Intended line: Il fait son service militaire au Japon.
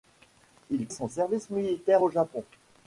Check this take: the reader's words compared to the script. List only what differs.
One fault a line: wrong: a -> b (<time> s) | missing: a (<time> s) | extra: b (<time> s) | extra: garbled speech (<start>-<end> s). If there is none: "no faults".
missing: fait (0.9 s)